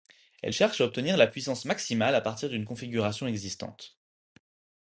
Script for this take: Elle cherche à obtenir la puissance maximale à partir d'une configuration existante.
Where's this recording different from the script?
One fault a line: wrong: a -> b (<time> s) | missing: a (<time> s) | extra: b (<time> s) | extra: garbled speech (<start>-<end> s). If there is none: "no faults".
no faults